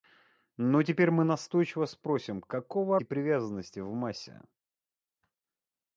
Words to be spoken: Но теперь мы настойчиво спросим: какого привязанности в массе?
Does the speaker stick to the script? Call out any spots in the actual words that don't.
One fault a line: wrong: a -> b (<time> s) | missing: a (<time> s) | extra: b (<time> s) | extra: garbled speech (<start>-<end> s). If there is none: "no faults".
no faults